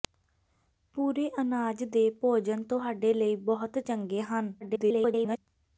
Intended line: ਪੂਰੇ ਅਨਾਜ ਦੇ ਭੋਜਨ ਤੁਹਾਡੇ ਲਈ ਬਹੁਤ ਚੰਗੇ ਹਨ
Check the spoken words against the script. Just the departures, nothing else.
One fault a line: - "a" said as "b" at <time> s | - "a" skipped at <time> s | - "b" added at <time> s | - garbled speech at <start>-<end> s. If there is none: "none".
- garbled speech at 4.6-5.4 s